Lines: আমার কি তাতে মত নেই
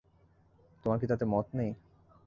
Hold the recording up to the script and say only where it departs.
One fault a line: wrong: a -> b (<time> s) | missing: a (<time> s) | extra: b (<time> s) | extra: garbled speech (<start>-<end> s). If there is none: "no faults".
wrong: আমার -> তোমার (0.8 s)